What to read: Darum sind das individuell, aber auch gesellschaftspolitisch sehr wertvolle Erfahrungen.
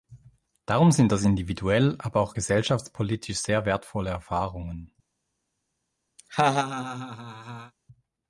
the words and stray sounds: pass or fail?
fail